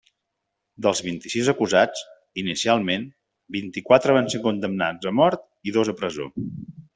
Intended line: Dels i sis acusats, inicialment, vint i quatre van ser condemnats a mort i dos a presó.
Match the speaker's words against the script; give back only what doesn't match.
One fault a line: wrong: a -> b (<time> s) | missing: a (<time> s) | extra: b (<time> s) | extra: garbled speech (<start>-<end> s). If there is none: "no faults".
extra: vint (1.1 s)